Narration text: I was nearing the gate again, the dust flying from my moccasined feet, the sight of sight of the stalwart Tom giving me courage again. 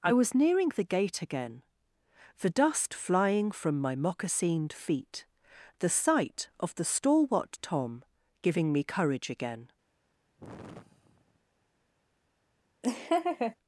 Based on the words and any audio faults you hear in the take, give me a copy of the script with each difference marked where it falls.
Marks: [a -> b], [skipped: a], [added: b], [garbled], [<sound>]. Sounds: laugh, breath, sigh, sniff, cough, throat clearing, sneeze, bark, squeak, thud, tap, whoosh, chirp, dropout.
I was nearing the gate again, the dust flying from my moccasined feet, the sight of [skipped: sight of] the stalwart Tom giving me courage again. [sigh] [laugh]